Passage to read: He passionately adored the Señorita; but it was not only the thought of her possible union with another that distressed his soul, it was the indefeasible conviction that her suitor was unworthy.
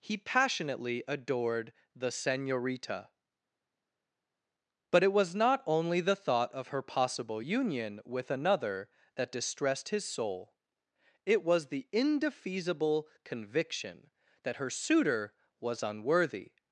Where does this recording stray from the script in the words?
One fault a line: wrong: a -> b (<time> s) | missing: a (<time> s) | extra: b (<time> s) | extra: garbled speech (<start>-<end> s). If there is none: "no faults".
no faults